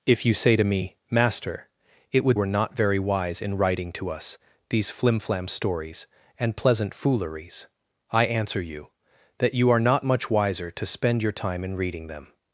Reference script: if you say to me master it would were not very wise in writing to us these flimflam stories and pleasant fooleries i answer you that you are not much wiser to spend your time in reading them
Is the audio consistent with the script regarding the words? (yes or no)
yes